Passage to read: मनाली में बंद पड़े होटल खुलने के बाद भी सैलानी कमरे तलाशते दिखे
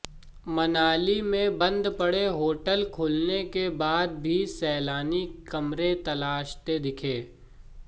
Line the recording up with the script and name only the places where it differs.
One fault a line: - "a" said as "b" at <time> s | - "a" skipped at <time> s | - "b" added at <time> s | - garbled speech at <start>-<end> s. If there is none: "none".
none